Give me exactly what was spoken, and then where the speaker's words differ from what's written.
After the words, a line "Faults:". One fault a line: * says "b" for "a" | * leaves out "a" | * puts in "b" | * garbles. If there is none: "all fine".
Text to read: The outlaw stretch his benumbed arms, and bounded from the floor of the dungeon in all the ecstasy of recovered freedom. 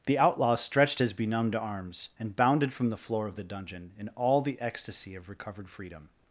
The outlaw stretched his benumbed arms, and bounded from the floor of the dungeon in all the ecstasy of recovered freedom.
Faults:
* says "stretched" for "stretch"